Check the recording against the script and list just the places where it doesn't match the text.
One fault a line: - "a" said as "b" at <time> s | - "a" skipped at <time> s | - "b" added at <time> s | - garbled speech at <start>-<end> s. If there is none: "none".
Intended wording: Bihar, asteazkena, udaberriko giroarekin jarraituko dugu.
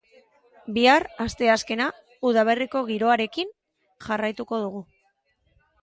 none